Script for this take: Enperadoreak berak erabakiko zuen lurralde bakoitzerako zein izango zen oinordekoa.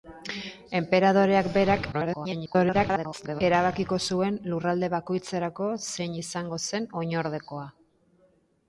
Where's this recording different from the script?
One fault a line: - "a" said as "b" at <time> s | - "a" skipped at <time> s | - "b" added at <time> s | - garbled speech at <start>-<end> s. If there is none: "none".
- garbled speech at 1.9-3.4 s